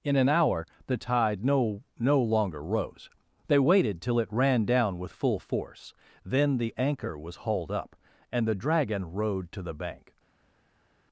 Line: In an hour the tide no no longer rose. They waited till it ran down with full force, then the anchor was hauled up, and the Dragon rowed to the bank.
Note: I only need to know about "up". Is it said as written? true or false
true